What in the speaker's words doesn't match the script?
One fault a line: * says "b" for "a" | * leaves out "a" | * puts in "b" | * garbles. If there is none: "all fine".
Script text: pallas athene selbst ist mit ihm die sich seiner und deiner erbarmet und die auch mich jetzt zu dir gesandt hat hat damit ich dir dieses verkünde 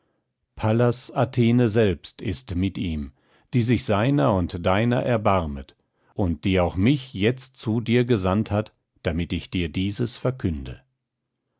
* leaves out "hat"